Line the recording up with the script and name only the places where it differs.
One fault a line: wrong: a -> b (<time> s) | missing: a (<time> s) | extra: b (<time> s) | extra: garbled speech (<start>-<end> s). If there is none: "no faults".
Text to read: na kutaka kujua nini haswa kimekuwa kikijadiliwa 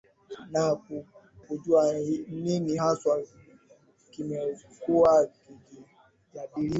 missing: kutaka (0.8 s)